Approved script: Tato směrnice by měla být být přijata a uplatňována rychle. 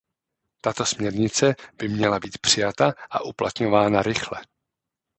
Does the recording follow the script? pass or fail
fail